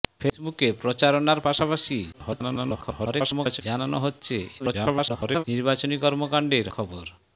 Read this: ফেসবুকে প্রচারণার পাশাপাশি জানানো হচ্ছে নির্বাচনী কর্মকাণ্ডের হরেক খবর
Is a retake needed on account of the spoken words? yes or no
yes